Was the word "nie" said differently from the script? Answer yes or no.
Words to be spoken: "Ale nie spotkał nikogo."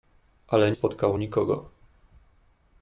yes